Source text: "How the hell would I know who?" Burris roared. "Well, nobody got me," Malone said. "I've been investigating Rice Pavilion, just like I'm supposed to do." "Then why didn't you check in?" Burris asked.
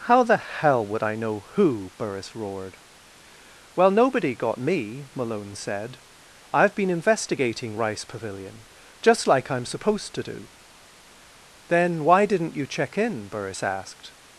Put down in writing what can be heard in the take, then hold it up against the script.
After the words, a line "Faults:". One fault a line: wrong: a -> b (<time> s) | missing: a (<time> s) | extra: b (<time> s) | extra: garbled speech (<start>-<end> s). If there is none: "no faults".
"How the hell would I know who?" Burris roared. "Well, nobody got me," Malone said. "I've been investigating Rice Pavilion, just like I'm supposed to do." "Then why didn't you check in?" Burris asked.
Faults:
no faults